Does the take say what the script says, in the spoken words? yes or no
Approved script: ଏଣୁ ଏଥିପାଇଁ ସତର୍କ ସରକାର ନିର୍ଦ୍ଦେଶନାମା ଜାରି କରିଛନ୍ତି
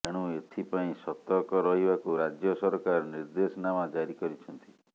no